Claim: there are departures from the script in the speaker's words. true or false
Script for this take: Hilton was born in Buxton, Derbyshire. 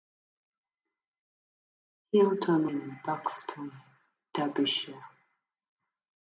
true